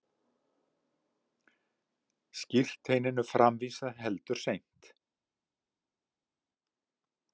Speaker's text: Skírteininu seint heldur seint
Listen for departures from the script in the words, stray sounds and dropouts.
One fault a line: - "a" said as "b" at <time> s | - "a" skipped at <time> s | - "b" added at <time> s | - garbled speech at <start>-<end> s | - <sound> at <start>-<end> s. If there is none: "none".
- "seint" said as "framvísað" at 3.4 s